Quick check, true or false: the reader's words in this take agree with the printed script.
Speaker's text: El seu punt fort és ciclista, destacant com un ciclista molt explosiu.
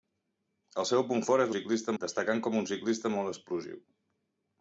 true